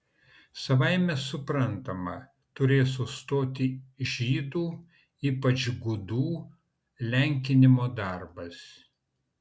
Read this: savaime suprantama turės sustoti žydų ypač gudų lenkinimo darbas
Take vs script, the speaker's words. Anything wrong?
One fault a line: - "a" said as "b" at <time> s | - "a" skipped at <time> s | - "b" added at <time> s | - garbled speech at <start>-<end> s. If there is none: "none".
none